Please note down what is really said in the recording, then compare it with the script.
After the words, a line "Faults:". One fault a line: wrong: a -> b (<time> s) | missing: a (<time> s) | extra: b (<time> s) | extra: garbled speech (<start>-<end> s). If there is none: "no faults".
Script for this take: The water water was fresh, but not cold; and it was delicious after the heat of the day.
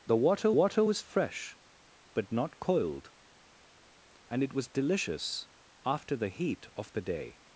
The water water was fresh, but not cold; and it was delicious after the heat of the day.
Faults:
no faults